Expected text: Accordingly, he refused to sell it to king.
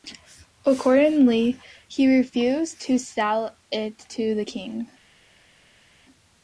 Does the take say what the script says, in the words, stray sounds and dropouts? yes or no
no